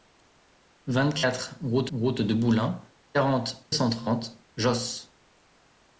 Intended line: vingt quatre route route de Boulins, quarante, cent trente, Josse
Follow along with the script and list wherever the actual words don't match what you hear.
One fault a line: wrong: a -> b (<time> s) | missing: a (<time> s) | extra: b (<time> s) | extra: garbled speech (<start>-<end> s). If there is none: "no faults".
no faults